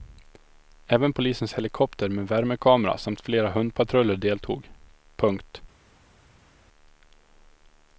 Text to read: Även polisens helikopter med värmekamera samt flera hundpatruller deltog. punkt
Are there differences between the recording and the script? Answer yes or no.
no